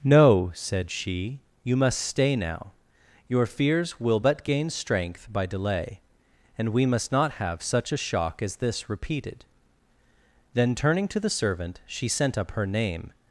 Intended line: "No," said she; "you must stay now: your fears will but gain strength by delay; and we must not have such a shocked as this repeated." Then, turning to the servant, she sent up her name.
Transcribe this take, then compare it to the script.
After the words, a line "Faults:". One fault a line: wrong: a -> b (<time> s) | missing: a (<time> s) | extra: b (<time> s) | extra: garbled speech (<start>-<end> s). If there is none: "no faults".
"No," said she; "you must stay now: your fears will but gain strength by delay; and we must not have such a shock as this repeated." Then, turning to the servant, she sent up her name.
Faults:
wrong: shocked -> shock (8.0 s)